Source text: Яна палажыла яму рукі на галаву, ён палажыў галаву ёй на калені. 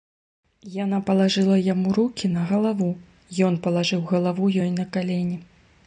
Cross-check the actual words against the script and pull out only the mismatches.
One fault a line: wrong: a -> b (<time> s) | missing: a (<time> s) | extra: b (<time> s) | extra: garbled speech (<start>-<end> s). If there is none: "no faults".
no faults